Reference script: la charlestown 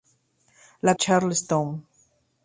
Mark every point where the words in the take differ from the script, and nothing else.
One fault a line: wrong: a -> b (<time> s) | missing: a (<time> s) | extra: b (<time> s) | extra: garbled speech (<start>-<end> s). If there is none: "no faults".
no faults